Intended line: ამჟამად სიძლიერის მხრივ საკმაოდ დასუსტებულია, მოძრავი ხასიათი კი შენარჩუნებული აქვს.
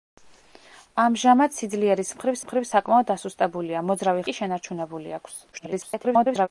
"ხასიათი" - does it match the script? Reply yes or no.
no